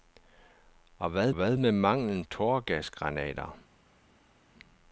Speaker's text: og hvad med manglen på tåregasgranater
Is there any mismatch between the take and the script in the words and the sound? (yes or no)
yes